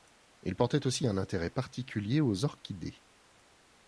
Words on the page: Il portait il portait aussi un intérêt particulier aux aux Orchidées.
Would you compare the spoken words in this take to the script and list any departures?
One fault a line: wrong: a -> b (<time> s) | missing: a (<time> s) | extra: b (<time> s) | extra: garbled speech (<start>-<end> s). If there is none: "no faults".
missing: il portait (0.9 s)
missing: aux (2.5 s)